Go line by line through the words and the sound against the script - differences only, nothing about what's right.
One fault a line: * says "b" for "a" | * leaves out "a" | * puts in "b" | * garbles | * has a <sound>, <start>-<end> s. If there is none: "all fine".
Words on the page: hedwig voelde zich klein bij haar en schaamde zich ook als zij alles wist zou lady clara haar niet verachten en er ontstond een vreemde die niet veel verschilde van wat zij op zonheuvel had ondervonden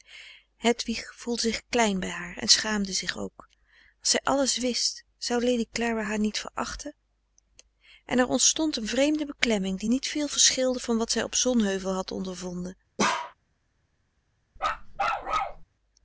* puts in "beklemming"
* has a bark, 13.0-13.3 s
* has a bark, 14.6-15.6 s